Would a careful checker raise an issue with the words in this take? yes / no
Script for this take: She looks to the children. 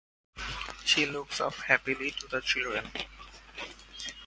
yes